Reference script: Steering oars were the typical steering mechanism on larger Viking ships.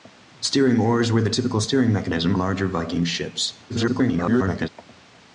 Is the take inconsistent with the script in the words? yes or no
yes